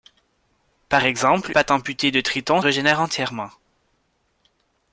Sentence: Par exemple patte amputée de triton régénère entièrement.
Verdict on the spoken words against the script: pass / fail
pass